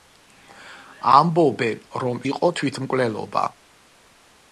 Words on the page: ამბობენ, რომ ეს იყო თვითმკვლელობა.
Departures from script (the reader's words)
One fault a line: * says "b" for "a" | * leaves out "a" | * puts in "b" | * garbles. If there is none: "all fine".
* leaves out "ეს"